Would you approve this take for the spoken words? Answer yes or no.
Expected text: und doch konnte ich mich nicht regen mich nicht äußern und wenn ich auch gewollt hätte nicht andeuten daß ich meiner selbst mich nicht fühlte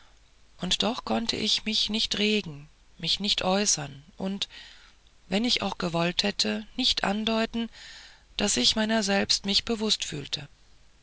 no